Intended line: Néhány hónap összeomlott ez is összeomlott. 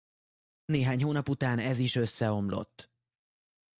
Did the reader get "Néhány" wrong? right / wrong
right